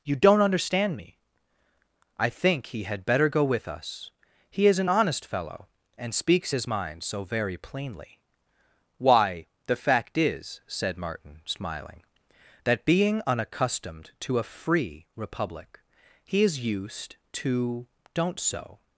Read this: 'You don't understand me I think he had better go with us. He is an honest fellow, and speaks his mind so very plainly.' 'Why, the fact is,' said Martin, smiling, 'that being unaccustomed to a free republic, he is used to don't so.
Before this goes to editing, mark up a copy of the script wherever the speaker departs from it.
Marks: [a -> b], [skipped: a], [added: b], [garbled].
'You don't understand me I think he had better go with us. He is an honest fellow, and speaks his mind so very plainly.' 'Why, the fact is,' said Martin, smiling, 'that being unaccustomed to a free republic, he is used to don't so.